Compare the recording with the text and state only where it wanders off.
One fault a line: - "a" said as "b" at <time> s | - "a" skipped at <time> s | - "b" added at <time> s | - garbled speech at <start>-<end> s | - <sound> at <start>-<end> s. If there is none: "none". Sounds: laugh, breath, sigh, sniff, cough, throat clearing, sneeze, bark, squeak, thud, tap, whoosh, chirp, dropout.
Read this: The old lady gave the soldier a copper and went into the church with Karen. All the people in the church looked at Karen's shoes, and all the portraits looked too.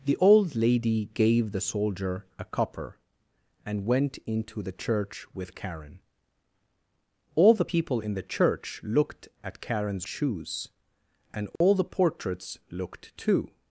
- dropout at 11.6-11.6 s